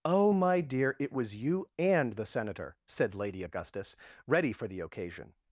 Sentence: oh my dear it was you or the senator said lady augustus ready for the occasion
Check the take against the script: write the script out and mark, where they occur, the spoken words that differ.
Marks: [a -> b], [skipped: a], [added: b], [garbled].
oh my dear it was you [or -> and] the senator said lady augustus ready for the occasion